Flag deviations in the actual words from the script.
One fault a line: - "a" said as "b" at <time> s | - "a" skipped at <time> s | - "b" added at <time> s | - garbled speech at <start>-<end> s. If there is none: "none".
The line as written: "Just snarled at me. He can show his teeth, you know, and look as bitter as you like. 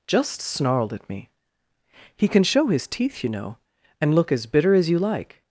none